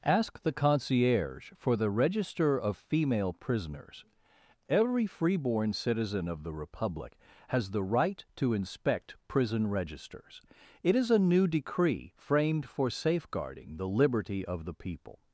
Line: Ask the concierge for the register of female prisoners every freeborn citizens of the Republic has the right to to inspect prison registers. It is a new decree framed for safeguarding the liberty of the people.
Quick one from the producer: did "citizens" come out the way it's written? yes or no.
no